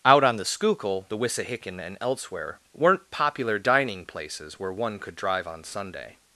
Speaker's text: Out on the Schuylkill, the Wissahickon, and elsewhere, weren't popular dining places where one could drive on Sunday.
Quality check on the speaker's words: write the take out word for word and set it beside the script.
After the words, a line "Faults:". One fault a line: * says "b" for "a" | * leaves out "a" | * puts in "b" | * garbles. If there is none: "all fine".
Out on the Schuylkill, the Wissahickon, and elsewhere, weren't popular dining places where one could drive on Sunday.
Faults:
all fine